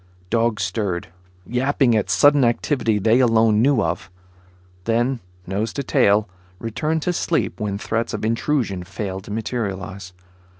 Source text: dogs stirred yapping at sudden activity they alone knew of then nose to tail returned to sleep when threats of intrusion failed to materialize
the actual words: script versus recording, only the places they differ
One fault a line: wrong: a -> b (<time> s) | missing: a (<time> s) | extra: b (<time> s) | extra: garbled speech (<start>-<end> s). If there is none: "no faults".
no faults